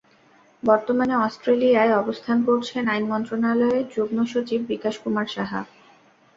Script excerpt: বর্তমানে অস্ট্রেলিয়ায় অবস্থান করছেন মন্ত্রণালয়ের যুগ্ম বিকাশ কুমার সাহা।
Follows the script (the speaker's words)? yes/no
no